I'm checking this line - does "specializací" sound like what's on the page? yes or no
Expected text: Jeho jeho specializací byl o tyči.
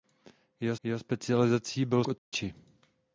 yes